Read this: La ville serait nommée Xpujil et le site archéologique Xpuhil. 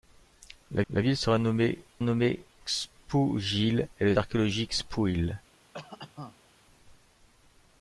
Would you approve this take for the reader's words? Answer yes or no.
no